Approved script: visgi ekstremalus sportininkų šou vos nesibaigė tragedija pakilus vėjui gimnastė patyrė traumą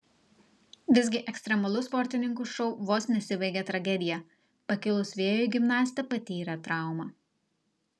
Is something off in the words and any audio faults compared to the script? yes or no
no